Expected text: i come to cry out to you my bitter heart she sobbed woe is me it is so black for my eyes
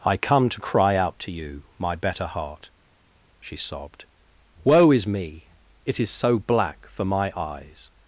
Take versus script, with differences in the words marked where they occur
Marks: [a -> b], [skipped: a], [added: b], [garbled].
i come to cry out to you my [bitter -> better] heart she sobbed woe is me it is so black for my eyes